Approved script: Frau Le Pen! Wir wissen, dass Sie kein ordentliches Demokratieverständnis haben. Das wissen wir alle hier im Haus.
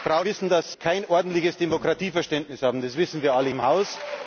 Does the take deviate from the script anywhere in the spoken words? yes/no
yes